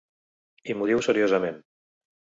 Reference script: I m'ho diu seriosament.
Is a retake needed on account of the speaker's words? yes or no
no